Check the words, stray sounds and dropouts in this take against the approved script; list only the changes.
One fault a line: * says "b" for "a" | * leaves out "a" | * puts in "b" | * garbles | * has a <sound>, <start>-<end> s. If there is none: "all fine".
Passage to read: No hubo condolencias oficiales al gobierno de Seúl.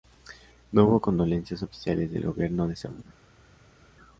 * says "del" for "al"